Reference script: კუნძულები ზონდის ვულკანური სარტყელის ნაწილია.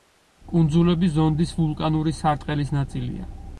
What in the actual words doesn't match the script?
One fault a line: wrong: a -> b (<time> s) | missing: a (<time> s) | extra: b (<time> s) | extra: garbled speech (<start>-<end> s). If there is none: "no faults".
no faults